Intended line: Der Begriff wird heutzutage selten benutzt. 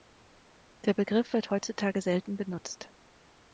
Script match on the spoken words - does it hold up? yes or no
yes